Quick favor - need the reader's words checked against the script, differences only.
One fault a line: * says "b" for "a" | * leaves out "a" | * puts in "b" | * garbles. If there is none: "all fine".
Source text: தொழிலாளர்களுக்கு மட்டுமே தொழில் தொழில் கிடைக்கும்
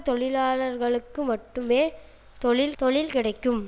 all fine